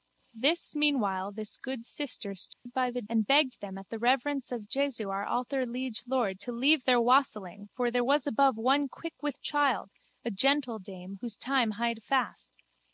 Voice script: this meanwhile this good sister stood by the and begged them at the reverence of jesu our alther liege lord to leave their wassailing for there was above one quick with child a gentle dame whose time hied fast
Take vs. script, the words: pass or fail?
pass